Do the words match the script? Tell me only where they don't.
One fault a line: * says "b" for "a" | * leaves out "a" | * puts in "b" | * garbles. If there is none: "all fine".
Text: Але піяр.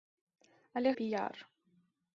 all fine